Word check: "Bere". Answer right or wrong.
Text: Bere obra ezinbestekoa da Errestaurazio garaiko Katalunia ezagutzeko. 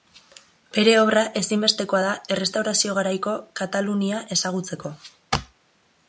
right